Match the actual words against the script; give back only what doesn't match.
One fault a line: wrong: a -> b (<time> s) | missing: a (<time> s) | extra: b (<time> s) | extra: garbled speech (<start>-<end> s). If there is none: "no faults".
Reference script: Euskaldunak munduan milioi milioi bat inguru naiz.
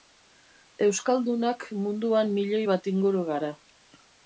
missing: milioi (2.6 s)
wrong: naiz -> gara (3.3 s)